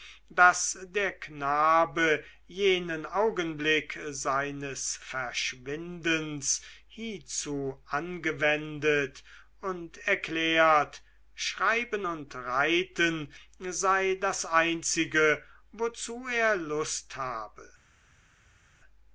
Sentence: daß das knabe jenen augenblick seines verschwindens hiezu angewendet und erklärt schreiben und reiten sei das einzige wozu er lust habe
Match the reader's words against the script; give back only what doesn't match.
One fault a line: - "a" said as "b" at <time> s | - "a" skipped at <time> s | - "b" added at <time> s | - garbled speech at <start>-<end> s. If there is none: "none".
- "das" said as "der" at 0.9 s